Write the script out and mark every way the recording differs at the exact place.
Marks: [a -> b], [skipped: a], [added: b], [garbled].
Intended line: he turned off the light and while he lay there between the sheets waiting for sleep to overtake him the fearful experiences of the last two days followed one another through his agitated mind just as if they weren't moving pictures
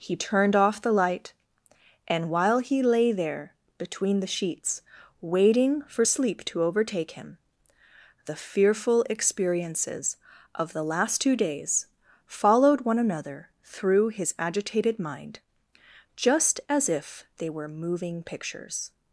he turned off the light and while he lay there between the sheets waiting for sleep to overtake him the fearful experiences of the last two days followed one another through his agitated mind just as if they [weren't -> were] moving pictures